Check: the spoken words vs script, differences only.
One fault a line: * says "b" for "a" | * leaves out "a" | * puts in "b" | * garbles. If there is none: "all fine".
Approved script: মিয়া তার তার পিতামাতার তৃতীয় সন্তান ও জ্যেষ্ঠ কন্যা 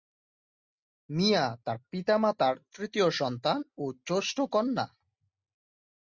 * leaves out "তার"